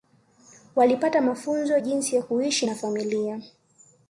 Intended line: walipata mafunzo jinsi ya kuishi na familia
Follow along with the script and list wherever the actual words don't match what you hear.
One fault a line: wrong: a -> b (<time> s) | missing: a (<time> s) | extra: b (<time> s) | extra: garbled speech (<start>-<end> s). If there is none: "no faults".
no faults